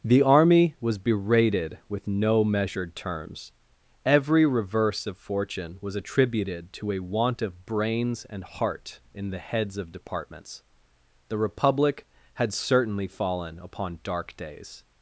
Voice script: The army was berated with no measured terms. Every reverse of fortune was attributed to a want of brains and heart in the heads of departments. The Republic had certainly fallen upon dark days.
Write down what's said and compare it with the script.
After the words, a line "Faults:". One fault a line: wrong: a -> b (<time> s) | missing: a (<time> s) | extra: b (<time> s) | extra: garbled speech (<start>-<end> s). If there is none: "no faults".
The army was berated with no measured terms. Every reverse of fortune was attributed to a want of brains and heart in the heads of departments. The Republic had certainly fallen upon dark days.
Faults:
no faults